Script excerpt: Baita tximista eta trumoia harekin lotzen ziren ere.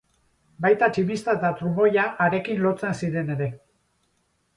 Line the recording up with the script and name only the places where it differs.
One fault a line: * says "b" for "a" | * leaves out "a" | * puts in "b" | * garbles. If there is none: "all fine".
all fine